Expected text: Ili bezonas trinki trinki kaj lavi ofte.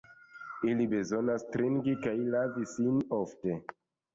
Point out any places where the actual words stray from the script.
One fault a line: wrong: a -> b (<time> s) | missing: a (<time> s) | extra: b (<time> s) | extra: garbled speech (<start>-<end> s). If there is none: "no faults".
missing: trinki (2.0 s)
extra: sin (2.8 s)